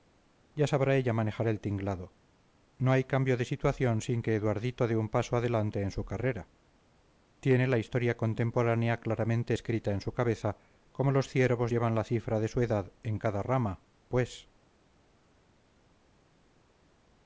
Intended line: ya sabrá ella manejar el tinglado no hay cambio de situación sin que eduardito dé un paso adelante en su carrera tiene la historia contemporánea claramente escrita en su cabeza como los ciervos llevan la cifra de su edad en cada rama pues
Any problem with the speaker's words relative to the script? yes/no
no